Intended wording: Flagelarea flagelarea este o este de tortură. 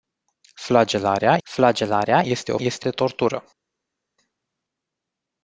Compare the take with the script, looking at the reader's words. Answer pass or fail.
pass